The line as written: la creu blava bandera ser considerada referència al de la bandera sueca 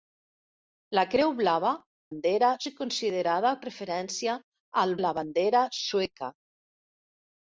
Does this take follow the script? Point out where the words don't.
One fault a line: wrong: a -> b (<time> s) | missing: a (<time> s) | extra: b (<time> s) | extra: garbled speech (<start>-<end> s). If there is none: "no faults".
no faults